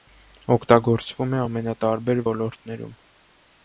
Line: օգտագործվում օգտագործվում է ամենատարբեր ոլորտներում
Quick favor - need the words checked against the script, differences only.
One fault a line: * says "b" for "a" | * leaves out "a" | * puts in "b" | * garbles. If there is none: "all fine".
* leaves out "օգտագործվում"